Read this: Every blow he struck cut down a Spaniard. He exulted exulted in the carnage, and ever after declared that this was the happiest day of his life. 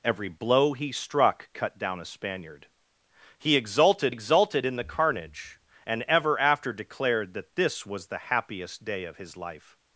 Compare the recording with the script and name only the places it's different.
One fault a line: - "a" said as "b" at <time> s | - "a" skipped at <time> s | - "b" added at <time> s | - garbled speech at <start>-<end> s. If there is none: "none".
none